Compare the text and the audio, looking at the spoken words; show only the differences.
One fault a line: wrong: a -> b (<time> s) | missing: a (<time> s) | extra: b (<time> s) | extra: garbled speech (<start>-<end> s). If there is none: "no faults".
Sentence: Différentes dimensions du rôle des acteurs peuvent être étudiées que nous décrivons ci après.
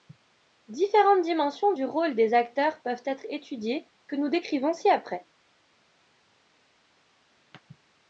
no faults